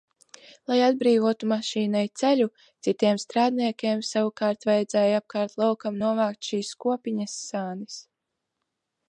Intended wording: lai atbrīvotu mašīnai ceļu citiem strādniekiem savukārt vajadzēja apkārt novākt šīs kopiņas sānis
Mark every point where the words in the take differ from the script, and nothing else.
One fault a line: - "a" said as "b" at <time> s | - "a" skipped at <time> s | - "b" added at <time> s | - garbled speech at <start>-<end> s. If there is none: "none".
- "laukam" added at 5.6 s